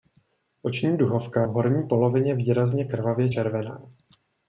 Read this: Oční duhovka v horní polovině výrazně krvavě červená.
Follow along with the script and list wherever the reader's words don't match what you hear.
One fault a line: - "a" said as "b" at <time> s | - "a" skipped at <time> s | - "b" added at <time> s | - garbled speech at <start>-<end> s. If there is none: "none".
none